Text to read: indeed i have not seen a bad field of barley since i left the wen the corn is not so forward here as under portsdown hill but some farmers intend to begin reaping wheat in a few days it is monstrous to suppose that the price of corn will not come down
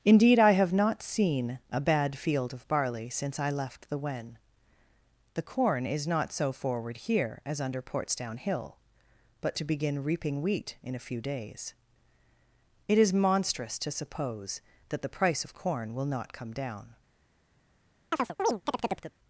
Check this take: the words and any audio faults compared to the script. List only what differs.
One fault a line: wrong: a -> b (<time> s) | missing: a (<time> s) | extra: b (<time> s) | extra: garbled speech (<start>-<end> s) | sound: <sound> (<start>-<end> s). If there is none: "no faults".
missing: some farmers intend (9.6 s)
sound: chirp (18.1-19.1 s)